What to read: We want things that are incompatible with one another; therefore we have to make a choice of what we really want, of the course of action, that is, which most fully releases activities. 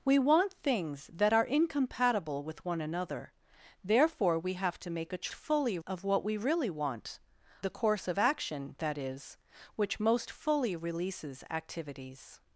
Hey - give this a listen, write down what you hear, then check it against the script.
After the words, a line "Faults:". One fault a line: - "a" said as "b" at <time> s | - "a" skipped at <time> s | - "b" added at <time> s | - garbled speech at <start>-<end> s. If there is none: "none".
We want things that are incompatible with one another; therefore we have to make a fully of what we really want, the course of action, that is, which most fully releases activities.
Faults:
- "choice" said as "fully" at 5.3 s
- "of" skipped at 7.2 s